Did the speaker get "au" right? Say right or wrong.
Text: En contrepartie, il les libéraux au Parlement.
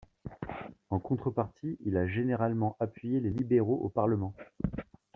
right